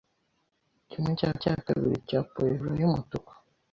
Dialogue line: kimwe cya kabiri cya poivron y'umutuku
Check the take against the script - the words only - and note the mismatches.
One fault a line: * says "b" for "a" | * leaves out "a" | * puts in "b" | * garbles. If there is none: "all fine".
* puts in "cya"